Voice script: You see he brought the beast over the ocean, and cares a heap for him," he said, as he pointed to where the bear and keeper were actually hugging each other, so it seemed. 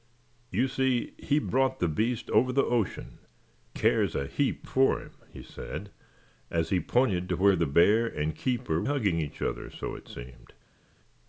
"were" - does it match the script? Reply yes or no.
no